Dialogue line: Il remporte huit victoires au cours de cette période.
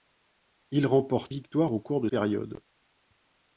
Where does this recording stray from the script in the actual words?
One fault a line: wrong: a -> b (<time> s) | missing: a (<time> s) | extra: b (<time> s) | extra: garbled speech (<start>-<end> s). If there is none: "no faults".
missing: huit (1.3 s)
missing: cette (2.1 s)